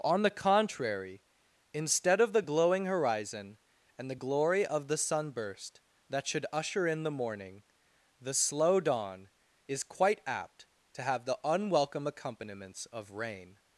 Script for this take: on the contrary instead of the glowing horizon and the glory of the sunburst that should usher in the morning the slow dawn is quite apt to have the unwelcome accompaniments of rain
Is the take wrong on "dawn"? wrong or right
right